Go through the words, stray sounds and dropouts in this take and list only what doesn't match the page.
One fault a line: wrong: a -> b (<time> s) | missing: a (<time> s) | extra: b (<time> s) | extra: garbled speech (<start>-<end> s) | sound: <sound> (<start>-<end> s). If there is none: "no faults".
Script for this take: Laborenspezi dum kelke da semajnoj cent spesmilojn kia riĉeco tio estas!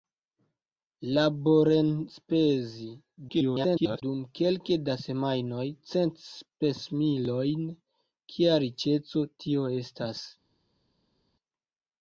extra: garbled speech (3.3-4.0 s)